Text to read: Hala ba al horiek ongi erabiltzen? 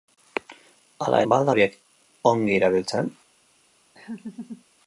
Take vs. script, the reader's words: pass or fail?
pass